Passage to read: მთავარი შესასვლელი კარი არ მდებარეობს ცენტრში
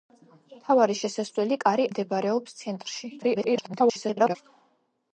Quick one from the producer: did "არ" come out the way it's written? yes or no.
no